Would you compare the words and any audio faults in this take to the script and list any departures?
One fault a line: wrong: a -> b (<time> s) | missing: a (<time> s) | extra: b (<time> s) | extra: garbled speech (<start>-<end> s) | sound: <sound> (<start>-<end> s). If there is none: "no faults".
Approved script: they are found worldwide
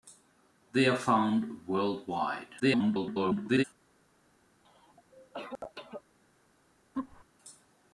extra: garbled speech (2.6-3.6 s)
sound: cough (4.6-6.0 s)
sound: laugh (6.9-7.2 s)